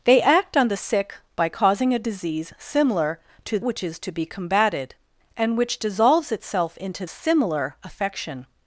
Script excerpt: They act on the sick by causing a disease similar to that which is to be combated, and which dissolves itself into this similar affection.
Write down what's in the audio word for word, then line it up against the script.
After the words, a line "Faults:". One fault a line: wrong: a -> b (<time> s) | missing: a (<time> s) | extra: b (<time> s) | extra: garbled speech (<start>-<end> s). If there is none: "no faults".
They act on the sick by causing a disease similar to which is to be combated, and which dissolves itself into similar affection.
Faults:
missing: that (3.6 s)
missing: this (7.1 s)